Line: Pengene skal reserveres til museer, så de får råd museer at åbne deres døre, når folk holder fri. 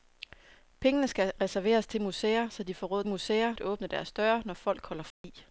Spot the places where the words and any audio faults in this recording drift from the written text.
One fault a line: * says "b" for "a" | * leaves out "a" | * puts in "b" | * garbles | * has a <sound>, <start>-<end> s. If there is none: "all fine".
* has a dropout, 5.1-5.2 s